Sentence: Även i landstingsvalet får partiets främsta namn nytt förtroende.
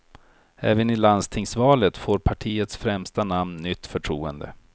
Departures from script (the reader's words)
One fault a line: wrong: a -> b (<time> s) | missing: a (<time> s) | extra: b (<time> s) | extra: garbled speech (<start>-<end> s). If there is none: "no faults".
no faults